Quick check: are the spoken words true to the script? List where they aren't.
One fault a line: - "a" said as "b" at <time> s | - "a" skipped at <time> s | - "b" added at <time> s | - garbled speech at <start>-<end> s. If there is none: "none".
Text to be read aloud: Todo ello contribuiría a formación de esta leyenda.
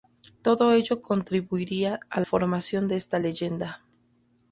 none